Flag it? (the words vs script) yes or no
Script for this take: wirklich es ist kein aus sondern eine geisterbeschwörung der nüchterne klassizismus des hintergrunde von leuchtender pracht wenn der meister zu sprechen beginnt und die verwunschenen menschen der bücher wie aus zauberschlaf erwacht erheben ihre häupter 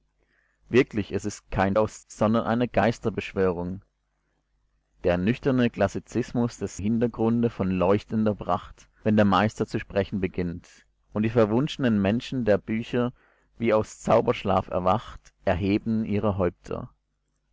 no